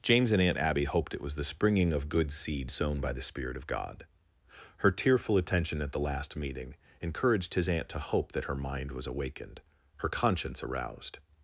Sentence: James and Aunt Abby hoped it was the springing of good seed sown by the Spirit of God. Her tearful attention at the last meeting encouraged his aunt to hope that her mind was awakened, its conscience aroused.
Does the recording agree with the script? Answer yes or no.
no